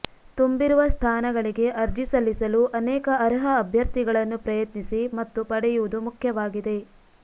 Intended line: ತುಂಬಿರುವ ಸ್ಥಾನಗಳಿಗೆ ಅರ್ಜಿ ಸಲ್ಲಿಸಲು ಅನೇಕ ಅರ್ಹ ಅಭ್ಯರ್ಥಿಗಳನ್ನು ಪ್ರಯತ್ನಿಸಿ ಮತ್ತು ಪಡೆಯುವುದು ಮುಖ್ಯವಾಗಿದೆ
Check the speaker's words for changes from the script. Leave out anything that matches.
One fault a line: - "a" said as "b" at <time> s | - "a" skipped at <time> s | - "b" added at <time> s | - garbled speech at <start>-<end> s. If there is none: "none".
none